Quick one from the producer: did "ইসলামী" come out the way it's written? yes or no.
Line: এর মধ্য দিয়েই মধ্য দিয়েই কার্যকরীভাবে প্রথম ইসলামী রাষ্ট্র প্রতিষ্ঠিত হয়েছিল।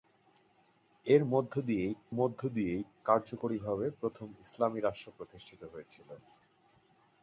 yes